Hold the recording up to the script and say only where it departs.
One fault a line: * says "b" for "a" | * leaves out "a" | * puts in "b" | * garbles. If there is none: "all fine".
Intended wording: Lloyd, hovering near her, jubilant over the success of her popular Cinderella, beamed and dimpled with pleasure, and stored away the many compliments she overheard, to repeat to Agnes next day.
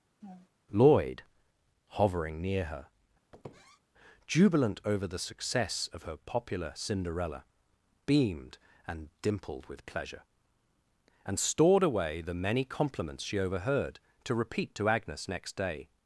all fine